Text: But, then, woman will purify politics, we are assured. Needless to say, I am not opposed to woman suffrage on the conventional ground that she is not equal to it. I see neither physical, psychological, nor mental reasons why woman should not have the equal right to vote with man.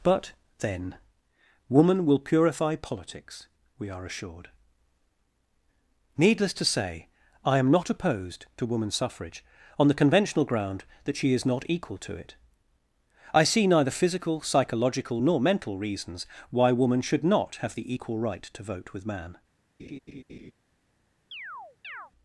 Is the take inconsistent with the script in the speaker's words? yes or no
no